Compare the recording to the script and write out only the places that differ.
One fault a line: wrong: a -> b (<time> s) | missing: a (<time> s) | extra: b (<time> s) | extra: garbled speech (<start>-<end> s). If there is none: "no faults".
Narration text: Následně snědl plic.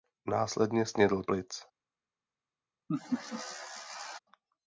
no faults